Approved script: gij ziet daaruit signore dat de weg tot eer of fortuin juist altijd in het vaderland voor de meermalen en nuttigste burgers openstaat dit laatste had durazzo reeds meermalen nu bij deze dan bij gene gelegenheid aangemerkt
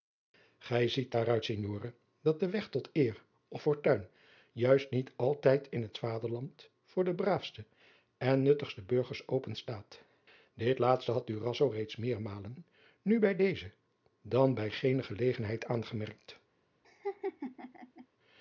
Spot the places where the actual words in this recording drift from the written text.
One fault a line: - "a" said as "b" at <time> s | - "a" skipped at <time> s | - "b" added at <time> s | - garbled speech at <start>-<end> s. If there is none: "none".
- "niet" added at 4.9 s
- "meermalen" said as "braafste" at 7.2 s